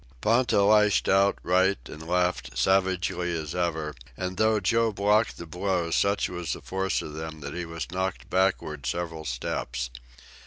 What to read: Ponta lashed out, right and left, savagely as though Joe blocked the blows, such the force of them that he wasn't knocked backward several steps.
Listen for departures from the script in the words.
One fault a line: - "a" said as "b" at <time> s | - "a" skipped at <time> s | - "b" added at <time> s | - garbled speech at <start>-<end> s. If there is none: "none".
- "ever and" added at 3.5 s
- "was" added at 6.3 s
- "wasn't" said as "was" at 7.7 s